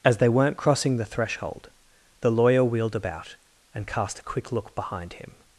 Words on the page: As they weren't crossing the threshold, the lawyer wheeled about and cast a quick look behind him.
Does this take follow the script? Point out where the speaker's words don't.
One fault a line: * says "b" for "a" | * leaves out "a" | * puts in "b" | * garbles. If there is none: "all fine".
all fine